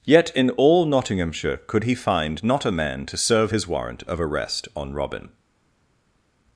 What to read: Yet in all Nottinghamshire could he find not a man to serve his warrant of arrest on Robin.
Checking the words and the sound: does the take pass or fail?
pass